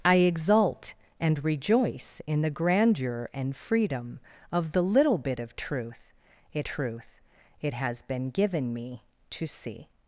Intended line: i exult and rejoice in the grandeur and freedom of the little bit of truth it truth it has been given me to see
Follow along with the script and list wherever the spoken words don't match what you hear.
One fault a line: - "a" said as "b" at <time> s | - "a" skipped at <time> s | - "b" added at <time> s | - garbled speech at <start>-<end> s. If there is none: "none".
none